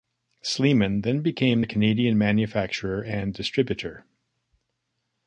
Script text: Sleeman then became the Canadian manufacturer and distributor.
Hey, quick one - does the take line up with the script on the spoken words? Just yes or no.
yes